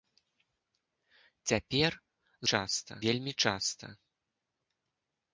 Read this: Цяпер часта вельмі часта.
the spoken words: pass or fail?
pass